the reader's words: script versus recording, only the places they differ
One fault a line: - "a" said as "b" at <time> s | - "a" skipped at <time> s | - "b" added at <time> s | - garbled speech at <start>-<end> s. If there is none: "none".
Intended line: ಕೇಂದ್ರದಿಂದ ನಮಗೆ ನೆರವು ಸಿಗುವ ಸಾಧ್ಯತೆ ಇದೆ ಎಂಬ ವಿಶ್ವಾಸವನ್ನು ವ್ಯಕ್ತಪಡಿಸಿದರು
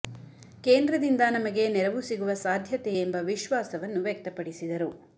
- "ಇದೆ" skipped at 2.9 s